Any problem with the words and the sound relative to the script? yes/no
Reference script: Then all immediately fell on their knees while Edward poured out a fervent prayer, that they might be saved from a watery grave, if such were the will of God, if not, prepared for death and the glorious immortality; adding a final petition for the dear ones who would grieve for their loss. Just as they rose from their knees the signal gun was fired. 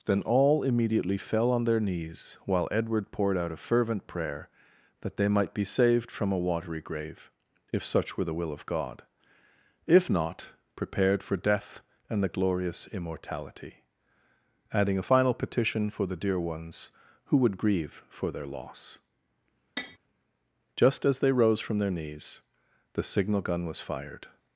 yes